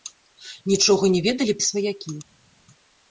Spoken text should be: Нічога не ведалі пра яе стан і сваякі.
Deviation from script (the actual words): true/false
true